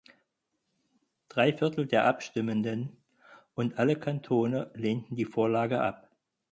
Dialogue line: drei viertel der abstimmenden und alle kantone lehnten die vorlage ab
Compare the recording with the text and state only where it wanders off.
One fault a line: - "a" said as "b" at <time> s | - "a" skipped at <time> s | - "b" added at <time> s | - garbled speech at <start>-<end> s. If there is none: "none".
none